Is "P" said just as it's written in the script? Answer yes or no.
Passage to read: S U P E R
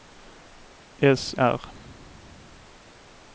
no